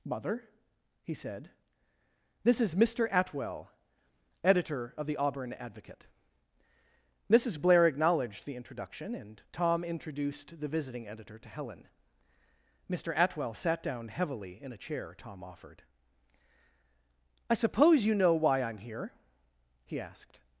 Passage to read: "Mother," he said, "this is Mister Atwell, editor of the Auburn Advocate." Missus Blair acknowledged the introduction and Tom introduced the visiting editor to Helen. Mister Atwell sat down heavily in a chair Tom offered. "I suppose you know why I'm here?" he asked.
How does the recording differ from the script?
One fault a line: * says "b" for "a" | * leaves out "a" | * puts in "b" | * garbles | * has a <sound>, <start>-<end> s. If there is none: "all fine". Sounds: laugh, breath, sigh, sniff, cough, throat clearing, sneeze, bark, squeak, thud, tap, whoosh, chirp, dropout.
all fine